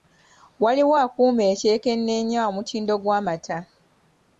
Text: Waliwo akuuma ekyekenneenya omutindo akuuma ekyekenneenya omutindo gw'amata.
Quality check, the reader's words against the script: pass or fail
fail